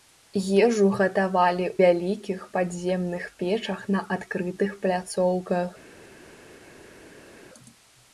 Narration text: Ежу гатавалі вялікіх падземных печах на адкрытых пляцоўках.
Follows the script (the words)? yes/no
yes